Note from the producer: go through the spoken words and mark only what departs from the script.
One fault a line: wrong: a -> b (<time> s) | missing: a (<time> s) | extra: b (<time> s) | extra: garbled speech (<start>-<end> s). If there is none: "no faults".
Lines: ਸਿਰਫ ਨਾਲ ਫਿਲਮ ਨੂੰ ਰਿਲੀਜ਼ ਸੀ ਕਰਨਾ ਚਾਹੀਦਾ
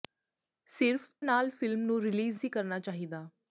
no faults